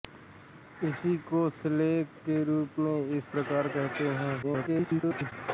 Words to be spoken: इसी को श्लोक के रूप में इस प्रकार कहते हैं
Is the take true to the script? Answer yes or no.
no